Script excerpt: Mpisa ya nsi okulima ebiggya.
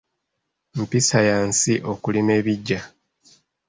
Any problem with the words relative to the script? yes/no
no